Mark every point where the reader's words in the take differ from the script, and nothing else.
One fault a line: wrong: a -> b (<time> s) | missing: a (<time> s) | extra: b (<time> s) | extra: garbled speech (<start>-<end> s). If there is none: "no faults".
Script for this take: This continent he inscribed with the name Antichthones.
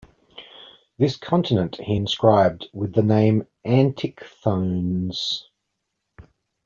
no faults